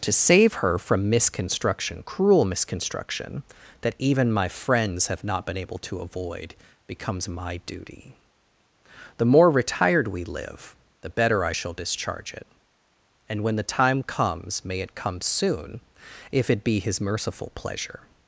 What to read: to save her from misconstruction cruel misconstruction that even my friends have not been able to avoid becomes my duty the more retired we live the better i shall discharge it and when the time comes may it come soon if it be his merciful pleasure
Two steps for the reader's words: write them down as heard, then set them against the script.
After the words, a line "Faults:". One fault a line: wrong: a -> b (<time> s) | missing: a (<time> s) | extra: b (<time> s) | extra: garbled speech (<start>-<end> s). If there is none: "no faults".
to save her from misconstruction cruel misconstruction that even my friends have not been able to avoid becomes my duty the more retired we live the better i shall discharge it and when the time comes may it come soon if it be his merciful pleasure
Faults:
no faults